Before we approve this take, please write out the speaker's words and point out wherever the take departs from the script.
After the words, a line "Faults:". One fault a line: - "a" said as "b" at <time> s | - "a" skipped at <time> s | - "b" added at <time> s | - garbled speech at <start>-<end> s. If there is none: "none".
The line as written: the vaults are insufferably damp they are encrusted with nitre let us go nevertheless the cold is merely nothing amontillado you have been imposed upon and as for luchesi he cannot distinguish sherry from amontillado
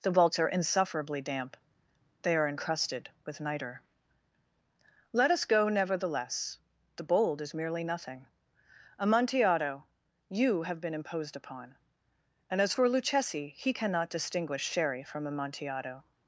the vaults are insufferably damp they are encrusted with nitre let us go nevertheless the bold is merely nothing amontillado you have been imposed upon and as for luchesi he cannot distinguish sherry from amontillado
Faults:
- "cold" said as "bold" at 7.0 s